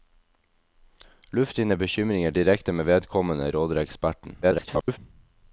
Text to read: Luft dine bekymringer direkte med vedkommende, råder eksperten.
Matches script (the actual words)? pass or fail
fail